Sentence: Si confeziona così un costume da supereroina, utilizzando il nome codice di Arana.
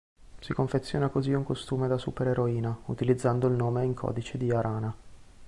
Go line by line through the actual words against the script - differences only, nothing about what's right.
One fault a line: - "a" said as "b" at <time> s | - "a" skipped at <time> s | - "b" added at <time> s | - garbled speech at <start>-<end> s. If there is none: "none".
- "in" added at 3.8 s